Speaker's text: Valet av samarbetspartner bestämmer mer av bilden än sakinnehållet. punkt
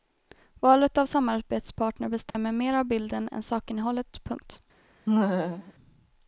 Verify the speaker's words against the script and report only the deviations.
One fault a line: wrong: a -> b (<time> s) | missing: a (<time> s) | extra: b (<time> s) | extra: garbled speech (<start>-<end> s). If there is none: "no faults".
no faults